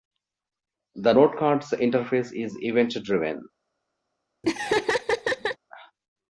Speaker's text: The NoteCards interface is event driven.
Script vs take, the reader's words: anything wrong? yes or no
no